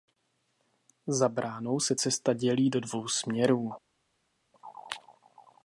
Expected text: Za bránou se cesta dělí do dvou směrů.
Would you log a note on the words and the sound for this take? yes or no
no